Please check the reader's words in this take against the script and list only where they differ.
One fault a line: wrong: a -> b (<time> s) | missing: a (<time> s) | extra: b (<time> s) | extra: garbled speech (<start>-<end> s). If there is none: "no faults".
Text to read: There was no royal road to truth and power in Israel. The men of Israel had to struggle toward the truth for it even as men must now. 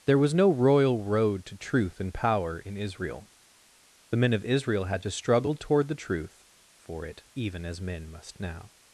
no faults